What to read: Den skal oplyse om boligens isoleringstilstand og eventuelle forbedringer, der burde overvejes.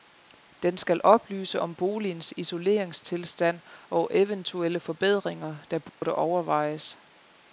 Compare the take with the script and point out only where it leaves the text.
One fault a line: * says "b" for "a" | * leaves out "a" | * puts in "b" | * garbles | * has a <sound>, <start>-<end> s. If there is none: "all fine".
* has a dropout, 5.9-6.0 s